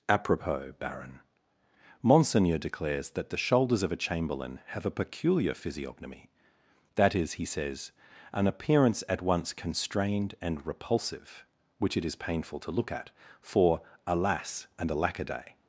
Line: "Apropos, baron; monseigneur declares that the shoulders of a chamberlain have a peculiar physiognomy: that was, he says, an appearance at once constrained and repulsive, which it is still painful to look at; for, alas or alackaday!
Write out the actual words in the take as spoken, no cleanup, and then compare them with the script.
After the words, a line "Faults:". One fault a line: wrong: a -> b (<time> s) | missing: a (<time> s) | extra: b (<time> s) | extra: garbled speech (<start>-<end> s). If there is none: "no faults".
"Apropos, baron; monseigneur declares that the shoulders of a chamberlain have a peculiar physiognomy: that is, he says, an appearance at once constrained and repulsive, which it is painful to look at; for, alas and alackaday!
Faults:
wrong: was -> is (7.1 s)
missing: still (12.2 s)
wrong: or -> and (14.8 s)